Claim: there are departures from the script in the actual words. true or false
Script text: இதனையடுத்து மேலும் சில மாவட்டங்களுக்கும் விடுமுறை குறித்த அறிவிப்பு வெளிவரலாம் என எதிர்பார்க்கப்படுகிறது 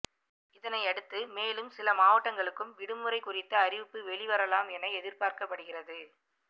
false